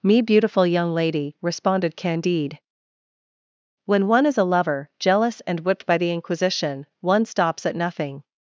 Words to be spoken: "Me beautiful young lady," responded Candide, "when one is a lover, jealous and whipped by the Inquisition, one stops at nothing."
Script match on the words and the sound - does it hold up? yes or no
yes